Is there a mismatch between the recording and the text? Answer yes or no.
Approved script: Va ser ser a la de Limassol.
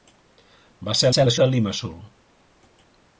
no